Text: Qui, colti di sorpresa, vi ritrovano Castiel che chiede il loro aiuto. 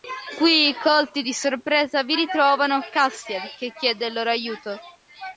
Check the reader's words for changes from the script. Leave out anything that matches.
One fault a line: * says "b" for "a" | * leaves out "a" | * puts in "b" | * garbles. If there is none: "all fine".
all fine